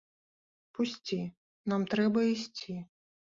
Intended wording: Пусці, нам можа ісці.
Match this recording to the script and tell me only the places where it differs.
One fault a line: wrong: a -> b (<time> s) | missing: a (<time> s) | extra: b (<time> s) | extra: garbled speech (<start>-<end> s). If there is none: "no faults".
wrong: можа -> трэба (2.0 s)